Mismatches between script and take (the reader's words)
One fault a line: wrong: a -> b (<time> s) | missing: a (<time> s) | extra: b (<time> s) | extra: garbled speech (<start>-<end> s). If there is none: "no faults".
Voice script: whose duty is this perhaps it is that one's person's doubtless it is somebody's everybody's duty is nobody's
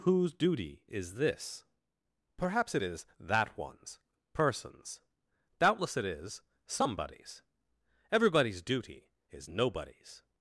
no faults